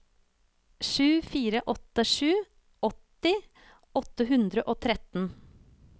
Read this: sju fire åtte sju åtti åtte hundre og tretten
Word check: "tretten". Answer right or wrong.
right